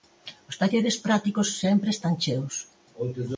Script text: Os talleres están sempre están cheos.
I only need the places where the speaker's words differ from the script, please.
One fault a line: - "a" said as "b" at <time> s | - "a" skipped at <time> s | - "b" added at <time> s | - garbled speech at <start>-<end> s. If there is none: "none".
- "están" said as "prácticos" at 1.0 s